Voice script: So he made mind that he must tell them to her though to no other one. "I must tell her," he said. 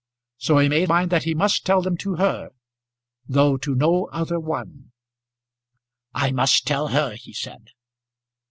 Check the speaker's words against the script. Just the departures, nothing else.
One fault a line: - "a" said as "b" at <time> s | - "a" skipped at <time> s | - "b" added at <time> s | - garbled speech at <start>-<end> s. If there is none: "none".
none